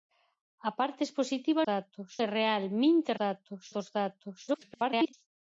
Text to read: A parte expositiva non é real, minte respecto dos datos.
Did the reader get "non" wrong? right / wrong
wrong